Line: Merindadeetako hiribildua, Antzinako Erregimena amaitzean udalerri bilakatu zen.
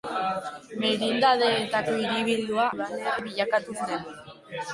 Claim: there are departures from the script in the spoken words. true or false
true